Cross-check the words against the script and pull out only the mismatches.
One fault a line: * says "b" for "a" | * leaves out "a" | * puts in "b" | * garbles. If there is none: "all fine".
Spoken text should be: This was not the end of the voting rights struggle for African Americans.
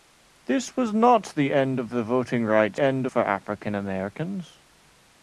* says "end" for "struggle"